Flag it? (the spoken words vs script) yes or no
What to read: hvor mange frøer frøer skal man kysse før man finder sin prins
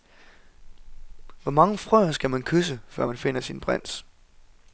yes